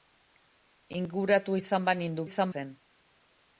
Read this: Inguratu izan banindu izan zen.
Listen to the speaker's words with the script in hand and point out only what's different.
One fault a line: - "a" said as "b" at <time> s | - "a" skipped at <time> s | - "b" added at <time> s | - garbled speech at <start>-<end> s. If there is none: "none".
none